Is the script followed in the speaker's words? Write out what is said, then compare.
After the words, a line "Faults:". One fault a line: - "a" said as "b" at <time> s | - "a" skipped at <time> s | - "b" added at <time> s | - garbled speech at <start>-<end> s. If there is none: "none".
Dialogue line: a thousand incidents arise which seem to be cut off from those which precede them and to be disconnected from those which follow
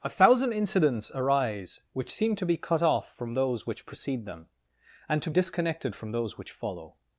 a thousand incidents arise which seem to be cut off from those which precede them and to disconnected from those which follow
Faults:
- "be" skipped at 5.3 s